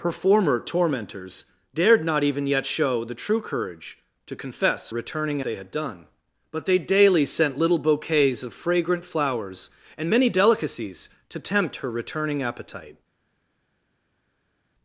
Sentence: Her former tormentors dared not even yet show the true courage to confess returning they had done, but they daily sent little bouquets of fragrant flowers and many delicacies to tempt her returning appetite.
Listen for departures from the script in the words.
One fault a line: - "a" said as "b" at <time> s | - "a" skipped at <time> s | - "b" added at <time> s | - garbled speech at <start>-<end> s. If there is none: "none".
none